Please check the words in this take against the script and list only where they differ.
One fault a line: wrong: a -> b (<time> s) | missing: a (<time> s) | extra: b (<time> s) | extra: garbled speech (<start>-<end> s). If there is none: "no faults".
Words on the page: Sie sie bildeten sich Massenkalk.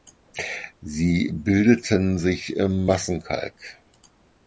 missing: sie (1.3 s)
extra: im (2.5 s)